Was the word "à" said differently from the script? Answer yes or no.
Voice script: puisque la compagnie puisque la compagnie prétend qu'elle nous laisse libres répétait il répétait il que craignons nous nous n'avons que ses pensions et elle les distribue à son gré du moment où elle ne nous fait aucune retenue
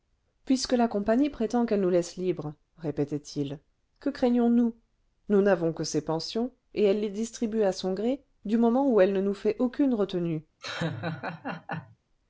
no